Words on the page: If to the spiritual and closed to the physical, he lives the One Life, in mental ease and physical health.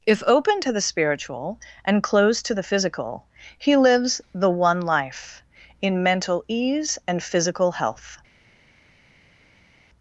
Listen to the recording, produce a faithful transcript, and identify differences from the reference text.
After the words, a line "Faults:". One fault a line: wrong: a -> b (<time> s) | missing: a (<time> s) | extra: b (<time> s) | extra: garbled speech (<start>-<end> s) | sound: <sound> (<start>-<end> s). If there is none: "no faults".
If open to the spiritual and closed to the physical, he lives the One Life, in mental ease and physical health.
Faults:
extra: open (0.2 s)